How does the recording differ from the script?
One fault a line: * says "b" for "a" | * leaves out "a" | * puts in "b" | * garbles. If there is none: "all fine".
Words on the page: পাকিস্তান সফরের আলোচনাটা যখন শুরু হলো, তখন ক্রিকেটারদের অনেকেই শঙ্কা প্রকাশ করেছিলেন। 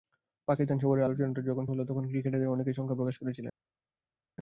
* leaves out "শুরু"